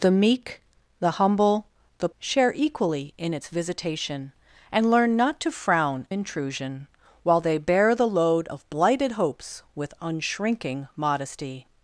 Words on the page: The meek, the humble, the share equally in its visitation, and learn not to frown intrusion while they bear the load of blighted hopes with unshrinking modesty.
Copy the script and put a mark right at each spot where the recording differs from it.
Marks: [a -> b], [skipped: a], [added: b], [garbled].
The meek, the humble, the share equally in its visitation, and learn not to frown intrusion while they bear the load of blighted hopes with unshrinking modesty.